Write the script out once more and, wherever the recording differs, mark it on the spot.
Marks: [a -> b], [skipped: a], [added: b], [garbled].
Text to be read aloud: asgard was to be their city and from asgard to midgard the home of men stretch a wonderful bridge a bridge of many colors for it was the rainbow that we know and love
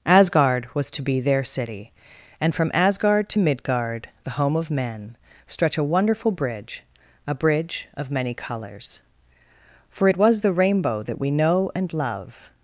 asgard was to be their city and from asgard to midgard the home of men stretch a wonderful bridge a bridge of many colors for it was the rainbow that we know and love